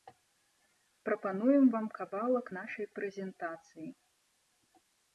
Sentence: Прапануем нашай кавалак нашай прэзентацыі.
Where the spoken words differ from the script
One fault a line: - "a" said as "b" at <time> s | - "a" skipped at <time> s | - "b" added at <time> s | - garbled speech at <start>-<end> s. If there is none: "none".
- "нашай" said as "вам" at 1.7 s